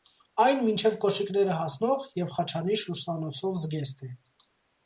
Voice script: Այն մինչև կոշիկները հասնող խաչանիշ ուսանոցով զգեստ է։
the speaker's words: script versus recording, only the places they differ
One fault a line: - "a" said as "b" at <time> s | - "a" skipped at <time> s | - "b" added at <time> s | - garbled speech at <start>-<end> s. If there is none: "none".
- "և" added at 2.2 s